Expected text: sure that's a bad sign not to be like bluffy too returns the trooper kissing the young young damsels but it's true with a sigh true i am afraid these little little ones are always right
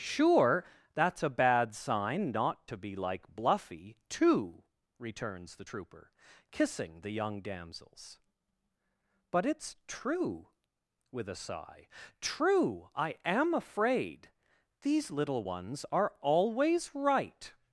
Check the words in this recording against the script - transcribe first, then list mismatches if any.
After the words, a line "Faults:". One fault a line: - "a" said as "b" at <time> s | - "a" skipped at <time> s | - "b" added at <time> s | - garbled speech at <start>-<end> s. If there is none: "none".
sure that's a bad sign not to be like bluffy too returns the trooper kissing the young damsels but it's true with a sigh true i am afraid these little ones are always right
Faults:
- "young" skipped at 7.4 s
- "little" skipped at 15.4 s